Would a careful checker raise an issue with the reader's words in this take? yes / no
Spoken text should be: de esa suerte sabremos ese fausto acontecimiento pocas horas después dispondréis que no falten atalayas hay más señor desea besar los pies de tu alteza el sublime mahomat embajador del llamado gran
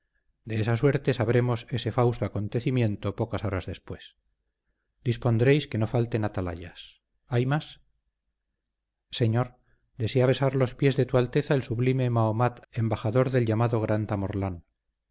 no